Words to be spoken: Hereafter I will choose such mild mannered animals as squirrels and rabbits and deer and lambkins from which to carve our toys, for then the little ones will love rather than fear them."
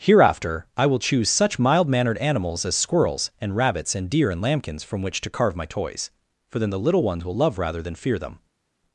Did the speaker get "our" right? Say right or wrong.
wrong